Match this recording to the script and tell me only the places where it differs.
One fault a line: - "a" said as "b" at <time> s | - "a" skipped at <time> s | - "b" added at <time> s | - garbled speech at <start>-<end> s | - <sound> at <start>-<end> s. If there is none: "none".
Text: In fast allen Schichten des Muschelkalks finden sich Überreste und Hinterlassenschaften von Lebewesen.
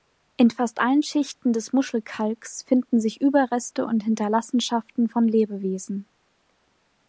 none